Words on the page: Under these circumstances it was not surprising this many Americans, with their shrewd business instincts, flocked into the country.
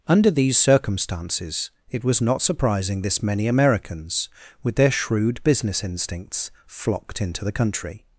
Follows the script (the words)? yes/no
yes